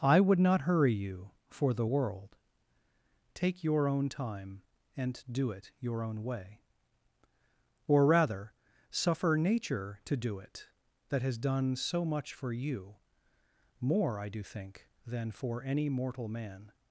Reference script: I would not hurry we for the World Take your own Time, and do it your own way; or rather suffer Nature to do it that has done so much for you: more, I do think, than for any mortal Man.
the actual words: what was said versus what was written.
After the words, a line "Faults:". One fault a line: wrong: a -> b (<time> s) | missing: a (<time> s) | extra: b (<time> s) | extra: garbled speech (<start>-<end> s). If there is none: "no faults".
I would not hurry you for the World Take your own Time, and do it your own way; or rather suffer Nature to do it that has done so much for you: more, I do think, than for any mortal Man.
Faults:
wrong: we -> you (0.9 s)